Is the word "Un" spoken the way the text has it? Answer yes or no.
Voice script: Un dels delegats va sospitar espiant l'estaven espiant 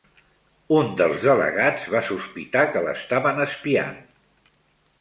yes